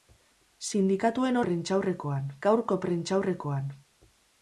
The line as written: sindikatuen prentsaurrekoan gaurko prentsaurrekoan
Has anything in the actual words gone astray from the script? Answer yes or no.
no